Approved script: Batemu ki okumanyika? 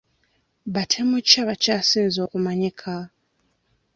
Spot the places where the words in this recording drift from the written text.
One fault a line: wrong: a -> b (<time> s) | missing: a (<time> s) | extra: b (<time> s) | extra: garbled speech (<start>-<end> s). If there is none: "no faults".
extra: abakyasinze (1.4 s)